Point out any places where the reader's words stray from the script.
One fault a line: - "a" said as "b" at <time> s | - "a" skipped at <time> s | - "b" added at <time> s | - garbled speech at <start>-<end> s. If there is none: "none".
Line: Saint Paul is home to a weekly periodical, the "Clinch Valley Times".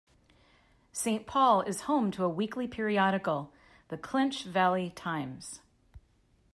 none